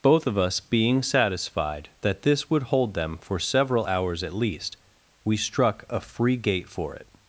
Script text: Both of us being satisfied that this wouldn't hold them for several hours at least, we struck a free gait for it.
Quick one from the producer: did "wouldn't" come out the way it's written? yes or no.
no